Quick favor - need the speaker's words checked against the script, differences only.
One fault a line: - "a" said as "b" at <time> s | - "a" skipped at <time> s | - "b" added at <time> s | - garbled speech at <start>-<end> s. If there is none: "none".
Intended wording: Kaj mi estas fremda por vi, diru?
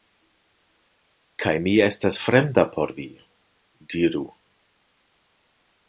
none